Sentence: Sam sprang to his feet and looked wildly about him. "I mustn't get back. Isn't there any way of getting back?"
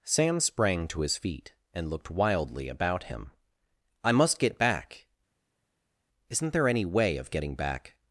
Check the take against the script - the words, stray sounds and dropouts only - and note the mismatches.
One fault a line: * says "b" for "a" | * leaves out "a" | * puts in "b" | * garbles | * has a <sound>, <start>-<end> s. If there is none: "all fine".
* says "must" for "mustn't"